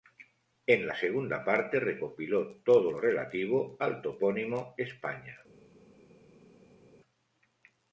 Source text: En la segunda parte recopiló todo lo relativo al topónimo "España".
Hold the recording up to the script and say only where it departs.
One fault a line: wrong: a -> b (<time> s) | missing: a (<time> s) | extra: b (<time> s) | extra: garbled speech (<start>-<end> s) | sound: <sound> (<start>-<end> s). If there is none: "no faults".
no faults